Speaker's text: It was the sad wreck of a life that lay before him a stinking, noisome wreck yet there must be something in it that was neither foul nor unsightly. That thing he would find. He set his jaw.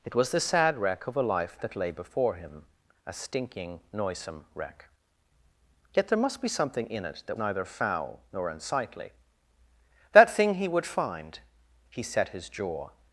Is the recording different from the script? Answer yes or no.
yes